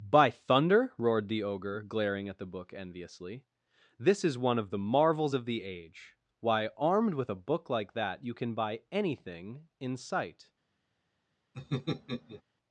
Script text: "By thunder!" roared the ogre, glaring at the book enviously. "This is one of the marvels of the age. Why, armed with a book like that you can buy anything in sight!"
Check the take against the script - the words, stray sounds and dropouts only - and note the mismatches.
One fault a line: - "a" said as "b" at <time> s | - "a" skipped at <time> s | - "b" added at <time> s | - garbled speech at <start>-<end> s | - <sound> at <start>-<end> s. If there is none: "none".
- laugh at 11.5-12.4 s